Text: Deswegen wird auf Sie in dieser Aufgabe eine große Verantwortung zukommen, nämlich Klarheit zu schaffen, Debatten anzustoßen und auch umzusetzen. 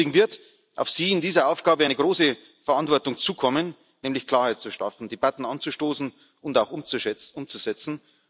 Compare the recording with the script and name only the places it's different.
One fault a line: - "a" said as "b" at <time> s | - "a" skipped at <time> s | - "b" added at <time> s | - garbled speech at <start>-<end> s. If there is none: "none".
none